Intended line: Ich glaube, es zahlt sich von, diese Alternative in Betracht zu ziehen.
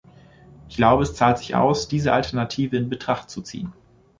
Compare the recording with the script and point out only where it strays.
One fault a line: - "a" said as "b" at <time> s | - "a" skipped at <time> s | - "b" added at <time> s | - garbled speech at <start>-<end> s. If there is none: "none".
- "von" said as "aus" at 1.6 s